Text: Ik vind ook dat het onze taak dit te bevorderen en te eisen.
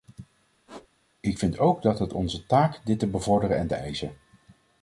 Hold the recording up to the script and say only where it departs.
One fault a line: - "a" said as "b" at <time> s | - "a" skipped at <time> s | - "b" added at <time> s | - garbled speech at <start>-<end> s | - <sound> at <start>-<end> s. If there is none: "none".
- squeak at 0.7-0.9 s